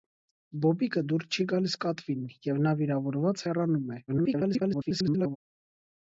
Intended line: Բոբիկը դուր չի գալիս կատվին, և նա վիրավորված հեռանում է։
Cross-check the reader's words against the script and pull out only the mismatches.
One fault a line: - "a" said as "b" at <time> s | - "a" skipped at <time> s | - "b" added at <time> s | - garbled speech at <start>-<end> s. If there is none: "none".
- garbled speech at 4.1-5.4 s